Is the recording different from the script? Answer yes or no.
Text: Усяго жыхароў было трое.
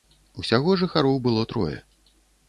no